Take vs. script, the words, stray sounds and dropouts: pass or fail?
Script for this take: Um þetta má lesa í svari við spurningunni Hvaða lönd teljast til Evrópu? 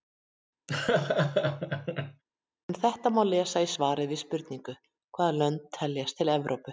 fail